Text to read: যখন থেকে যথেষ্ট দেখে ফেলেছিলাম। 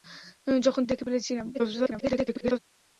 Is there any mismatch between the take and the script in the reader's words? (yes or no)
yes